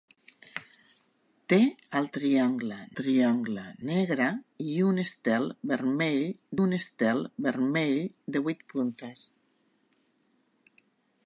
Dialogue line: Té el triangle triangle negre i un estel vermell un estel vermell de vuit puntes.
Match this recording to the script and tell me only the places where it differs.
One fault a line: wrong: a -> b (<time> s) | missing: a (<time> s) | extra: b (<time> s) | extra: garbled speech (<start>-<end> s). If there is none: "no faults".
no faults